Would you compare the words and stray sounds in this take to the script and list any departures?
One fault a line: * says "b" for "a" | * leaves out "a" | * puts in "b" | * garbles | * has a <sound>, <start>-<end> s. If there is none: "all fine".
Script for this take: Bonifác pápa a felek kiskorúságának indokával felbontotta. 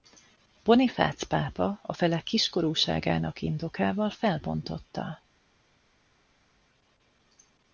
all fine